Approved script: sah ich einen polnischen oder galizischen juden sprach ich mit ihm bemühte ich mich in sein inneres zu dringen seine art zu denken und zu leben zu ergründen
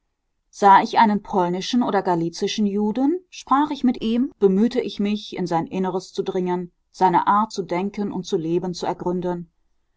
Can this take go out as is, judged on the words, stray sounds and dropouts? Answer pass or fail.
pass